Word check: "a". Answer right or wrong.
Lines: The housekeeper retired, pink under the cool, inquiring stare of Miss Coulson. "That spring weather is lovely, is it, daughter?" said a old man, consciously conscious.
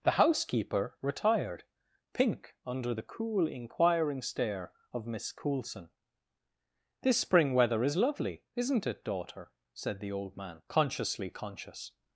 wrong